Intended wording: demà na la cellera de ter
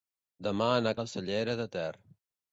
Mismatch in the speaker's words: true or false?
false